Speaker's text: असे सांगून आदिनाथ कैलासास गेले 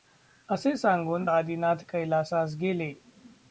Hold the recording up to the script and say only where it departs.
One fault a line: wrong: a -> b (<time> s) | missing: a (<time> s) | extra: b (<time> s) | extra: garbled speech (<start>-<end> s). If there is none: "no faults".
no faults